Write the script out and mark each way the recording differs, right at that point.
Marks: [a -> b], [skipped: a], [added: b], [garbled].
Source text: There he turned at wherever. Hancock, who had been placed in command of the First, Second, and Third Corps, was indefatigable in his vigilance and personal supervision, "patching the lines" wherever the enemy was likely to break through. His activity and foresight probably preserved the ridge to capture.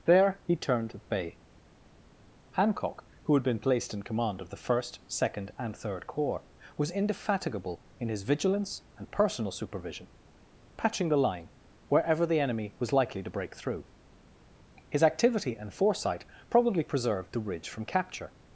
There he turned at [wherever. -> bay] Hancock, who had been placed in command of the First, Second, and Third Corps, was indefatigable in his vigilance and personal supervision, "patching the [lines" -> line] wherever the enemy was likely to break through. His activity and foresight probably preserved the ridge [to -> from] capture.